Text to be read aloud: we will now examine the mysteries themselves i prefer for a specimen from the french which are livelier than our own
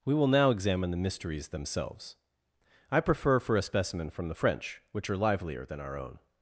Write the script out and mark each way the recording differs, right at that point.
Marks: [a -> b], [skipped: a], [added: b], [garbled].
we will now examine the mysteries themselves i prefer for a specimen from the french which are livelier than our own